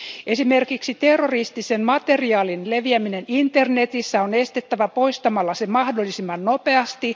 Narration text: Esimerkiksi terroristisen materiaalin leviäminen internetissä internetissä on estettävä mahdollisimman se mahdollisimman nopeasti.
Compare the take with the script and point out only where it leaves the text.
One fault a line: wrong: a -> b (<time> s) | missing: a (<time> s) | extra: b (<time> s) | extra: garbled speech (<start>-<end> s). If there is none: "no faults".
missing: internetissä (4.2 s)
wrong: mahdollisimman -> poistamalla (4.9 s)